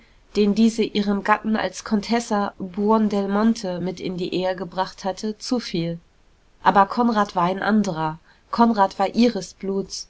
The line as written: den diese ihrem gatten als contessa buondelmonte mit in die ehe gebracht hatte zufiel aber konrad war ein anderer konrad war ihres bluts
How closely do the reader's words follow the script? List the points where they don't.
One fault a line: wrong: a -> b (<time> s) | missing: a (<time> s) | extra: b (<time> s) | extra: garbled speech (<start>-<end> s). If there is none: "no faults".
no faults